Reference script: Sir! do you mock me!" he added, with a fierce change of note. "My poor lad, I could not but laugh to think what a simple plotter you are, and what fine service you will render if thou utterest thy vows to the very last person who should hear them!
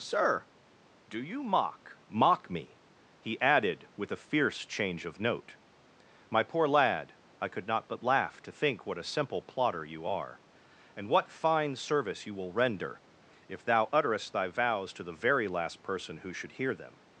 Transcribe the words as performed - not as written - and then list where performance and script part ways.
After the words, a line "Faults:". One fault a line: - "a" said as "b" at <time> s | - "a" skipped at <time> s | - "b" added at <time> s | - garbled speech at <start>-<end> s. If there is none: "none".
Sir! do you mock mock me!" he added, with a fierce change of note. "My poor lad, I could not but laugh to think what a simple plotter you are, and what fine service you will render if thou utterest thy vows to the very last person who should hear them!
Faults:
- "mock" added at 2.1 s